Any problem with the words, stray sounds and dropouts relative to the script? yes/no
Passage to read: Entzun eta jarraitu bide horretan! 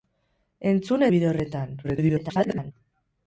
yes